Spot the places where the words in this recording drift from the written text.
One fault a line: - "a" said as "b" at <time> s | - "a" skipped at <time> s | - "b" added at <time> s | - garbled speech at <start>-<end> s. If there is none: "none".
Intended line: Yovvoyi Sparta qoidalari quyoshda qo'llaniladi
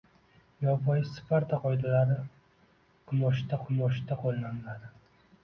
- "quyoshda" added at 3.7 s